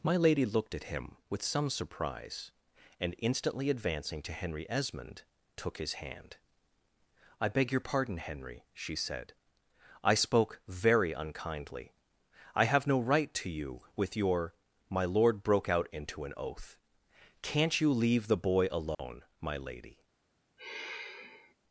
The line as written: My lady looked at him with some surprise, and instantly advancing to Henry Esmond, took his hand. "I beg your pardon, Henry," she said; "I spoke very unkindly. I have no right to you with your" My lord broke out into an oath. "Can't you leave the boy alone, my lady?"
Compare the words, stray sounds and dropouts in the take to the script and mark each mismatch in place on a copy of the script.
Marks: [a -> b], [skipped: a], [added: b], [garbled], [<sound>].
My lady looked at him with some surprise, and instantly advancing to Henry Esmond, took his hand. "I beg your pardon, Henry," she said; "I spoke very unkindly. I have no right to you with your" My lord broke out into an oath. "Can't you leave the boy alone, [dropout] my lady?" [sigh]